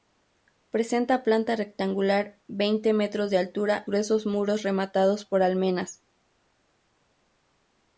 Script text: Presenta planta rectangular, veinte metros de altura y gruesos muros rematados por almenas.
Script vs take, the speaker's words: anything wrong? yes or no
yes